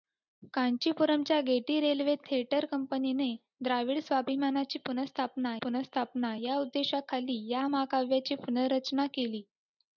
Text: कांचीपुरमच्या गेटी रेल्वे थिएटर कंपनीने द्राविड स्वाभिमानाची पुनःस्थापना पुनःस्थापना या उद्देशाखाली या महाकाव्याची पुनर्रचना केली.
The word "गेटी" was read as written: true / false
true